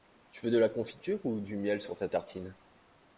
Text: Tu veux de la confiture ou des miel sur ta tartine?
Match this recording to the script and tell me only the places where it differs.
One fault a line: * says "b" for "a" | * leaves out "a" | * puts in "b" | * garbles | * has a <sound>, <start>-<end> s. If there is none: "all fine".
* says "du" for "des"